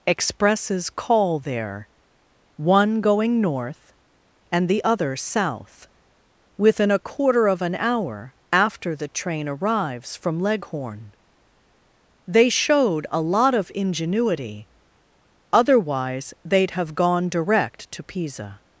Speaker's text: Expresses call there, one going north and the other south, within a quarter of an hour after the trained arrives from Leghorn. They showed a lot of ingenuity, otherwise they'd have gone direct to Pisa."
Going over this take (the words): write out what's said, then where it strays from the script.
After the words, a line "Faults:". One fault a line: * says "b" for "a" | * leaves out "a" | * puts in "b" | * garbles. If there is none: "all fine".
Expresses call there, one going north and the other south, within a quarter of an hour after the train arrives from Leghorn. They showed a lot of ingenuity, otherwise they'd have gone direct to Pisa."
Faults:
* says "train" for "trained"